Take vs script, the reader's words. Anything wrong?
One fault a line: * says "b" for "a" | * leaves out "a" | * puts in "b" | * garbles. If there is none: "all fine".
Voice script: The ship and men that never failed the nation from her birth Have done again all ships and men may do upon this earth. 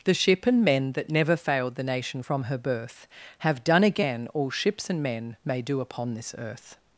all fine